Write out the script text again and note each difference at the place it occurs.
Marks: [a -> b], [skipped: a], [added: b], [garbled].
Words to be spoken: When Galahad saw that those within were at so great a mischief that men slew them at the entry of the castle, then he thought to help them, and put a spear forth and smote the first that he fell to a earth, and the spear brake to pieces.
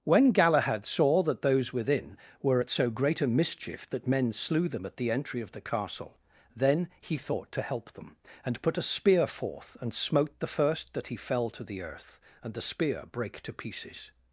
When Galahad saw that those within were at so great a mischief that men slew them at the entry of the castle, then he thought to help them, and put a spear forth and smote the first that he fell to [a -> the] earth, and the spear brake to pieces.